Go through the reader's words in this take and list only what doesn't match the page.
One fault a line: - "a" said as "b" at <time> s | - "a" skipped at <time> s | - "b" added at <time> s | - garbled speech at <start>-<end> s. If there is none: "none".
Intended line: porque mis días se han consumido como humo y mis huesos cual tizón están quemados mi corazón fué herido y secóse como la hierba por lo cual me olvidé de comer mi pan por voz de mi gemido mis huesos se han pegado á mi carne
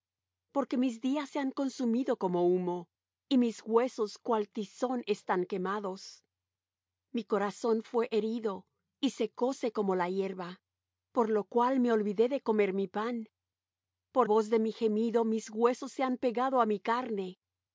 none